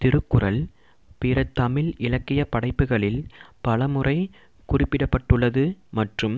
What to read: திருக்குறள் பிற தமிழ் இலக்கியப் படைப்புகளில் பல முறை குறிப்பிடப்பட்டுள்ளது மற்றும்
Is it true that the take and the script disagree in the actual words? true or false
false